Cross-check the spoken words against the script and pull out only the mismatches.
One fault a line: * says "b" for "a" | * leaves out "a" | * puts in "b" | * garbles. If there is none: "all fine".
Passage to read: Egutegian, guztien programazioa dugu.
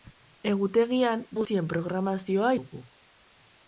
all fine